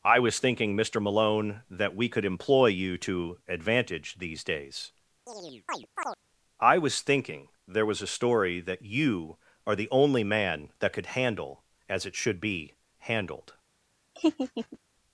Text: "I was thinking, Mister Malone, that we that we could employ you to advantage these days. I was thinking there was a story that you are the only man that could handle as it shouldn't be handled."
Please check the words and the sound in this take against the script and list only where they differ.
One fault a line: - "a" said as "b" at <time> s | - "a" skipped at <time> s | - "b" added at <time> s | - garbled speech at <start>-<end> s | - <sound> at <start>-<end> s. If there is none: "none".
- "that we" skipped at 2.1 s
- chirp at 5.3-6.2 s
- "shouldn't" said as "should" at 12.1 s
- laugh at 14.2-14.8 s